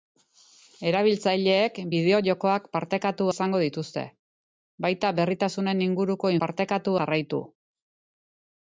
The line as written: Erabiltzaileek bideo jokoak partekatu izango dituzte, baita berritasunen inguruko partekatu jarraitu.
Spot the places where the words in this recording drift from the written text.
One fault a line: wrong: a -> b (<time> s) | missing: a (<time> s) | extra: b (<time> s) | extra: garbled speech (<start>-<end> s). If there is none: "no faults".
no faults